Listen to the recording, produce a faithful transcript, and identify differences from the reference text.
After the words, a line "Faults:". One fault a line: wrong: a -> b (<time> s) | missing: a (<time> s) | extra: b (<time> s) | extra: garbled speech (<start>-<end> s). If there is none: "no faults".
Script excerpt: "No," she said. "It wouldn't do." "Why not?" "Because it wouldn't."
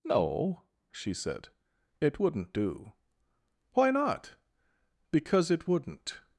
"No," she said. "It wouldn't do." "Why not?" "Because it wouldn't."
Faults:
no faults